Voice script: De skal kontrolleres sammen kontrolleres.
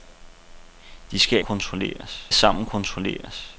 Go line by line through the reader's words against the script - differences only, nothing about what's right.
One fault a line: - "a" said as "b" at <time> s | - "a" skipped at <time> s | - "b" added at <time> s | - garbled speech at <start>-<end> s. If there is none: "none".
none